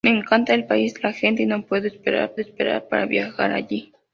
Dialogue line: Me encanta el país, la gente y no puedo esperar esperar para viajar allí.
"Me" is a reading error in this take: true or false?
false